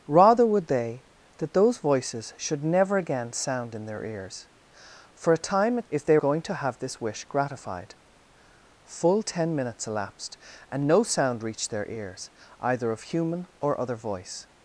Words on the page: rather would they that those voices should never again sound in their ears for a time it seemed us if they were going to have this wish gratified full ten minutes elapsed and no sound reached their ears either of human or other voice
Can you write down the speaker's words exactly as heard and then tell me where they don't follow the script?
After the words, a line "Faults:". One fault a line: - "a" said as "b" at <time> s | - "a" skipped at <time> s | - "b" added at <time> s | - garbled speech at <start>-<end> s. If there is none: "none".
rather would they that those voices should never again sound in their ears for a time it if they going to have this wish gratified full ten minutes elapsed and no sound reached their ears either of human or other voice
Faults:
- "seemed us" skipped at 5.9 s
- "were" skipped at 6.2 s